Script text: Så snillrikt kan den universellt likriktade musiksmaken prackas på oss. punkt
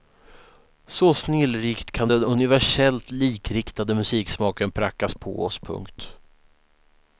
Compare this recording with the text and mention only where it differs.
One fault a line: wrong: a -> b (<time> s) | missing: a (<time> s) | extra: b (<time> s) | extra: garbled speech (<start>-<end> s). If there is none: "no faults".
no faults